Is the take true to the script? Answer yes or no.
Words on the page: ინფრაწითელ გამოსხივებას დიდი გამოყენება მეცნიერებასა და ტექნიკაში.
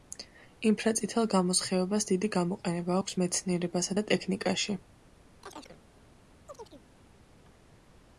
no